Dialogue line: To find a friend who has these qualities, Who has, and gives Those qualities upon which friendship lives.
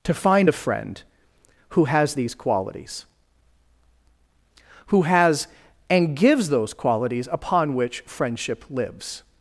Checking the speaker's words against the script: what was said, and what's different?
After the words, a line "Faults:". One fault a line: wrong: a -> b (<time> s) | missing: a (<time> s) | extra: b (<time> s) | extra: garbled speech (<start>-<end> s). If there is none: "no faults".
To find a friend who has these qualities, Who has, and gives Those qualities upon which friendship lives.
Faults:
no faults